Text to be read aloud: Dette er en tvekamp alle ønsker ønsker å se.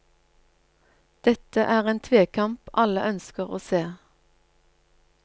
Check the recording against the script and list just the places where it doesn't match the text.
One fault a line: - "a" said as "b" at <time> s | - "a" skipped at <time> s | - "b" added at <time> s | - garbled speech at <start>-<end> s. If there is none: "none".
- "ønsker" skipped at 3.5 s